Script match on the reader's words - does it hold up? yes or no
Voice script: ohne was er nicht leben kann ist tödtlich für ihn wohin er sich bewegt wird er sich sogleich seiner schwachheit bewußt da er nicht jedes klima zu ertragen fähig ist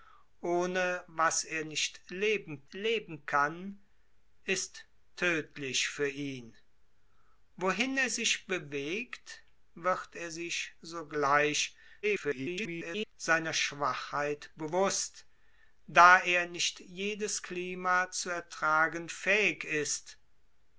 no